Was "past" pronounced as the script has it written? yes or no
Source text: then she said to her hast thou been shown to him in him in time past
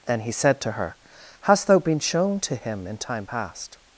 yes